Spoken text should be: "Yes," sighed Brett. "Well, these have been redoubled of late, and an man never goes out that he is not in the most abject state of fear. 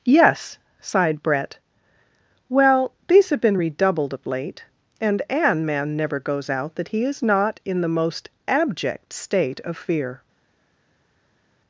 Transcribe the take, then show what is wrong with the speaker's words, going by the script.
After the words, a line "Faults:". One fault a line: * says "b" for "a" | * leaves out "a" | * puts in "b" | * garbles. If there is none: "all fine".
"Yes," sighed Brett. "Well, these have been redoubled of late, and an man never goes out that he is not in the most abject state of fear.
Faults:
all fine